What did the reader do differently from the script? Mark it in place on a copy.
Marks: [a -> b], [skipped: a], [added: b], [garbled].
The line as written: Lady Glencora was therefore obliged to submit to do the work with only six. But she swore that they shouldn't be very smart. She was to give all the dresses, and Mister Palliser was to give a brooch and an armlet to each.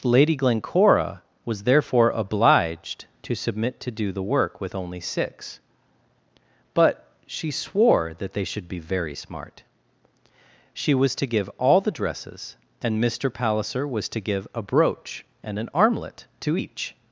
Lady Glencora was therefore obliged to submit to do the work with only six. But she swore that they [shouldn't -> should] be very smart. She was to give all the dresses, and Mister Palliser was to give a brooch and an armlet to each.